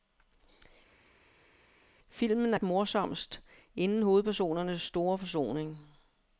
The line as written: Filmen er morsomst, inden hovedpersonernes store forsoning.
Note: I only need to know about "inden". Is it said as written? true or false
true